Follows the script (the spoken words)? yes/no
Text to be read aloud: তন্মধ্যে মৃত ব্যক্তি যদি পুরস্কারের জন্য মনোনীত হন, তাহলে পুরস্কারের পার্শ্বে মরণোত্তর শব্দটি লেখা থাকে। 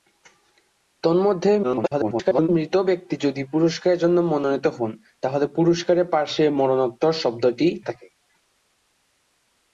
no